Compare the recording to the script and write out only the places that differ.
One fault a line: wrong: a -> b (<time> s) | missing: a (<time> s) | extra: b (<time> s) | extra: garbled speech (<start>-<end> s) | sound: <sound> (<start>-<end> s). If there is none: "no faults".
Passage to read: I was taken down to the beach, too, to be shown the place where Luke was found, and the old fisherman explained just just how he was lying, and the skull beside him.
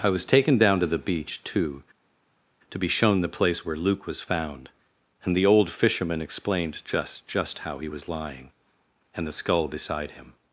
no faults